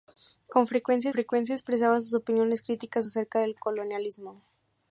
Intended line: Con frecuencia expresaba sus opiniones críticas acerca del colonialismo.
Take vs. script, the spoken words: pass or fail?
fail